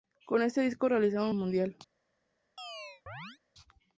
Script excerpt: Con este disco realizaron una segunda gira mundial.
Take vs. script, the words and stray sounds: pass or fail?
fail